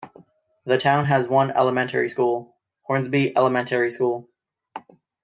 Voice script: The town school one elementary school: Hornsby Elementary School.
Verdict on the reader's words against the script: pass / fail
fail